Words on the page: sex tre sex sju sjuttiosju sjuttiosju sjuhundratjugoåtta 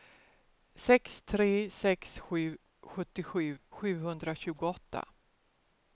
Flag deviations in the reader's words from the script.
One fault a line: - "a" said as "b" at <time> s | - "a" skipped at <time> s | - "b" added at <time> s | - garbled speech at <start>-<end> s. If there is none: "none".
- "sjuttiosju" skipped at 3.6 s